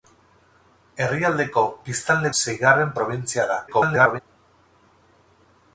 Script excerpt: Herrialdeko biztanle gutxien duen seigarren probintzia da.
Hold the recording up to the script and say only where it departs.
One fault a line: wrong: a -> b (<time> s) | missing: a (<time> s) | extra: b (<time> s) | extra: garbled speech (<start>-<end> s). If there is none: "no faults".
missing: gutxien duen (2.3 s)
extra: garbled speech (3.7-4.2 s)